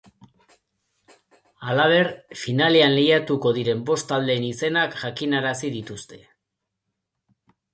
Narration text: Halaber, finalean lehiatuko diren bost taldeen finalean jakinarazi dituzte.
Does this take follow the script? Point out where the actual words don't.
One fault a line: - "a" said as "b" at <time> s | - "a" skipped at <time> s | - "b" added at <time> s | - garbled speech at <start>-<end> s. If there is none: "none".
- "finalean" said as "izenak" at 4.5 s